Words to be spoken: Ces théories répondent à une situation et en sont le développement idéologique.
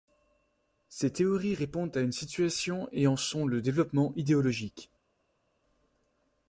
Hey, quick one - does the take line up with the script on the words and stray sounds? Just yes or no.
yes